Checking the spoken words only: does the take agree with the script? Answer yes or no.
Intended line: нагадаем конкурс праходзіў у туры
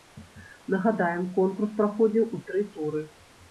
no